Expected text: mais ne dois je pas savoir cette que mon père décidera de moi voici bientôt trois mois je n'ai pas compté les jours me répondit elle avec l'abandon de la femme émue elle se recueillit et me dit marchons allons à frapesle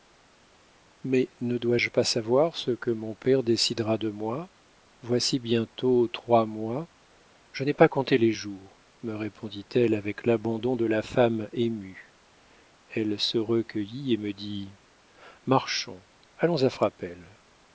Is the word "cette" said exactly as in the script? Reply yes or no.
no